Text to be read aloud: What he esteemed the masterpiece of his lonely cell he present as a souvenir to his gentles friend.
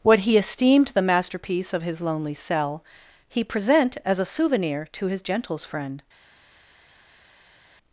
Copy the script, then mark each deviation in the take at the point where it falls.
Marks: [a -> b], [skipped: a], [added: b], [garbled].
What he esteemed the masterpiece of his lonely cell he present as a souvenir to his gentles friend.